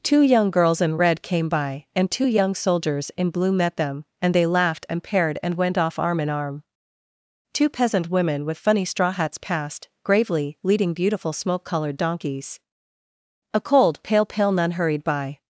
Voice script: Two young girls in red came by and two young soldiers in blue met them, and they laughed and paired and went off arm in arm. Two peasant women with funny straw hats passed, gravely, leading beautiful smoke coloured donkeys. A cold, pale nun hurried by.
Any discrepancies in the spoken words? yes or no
yes